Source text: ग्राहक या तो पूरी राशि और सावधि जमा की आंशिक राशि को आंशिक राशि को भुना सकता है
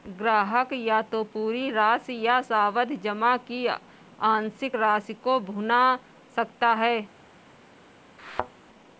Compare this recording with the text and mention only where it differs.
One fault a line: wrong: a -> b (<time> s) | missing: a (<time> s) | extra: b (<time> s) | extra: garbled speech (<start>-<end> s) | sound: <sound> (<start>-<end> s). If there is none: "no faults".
wrong: और -> या (2.2 s)
missing: आंशिक राशि को (5.4 s)
sound: thud (8.2-8.5 s)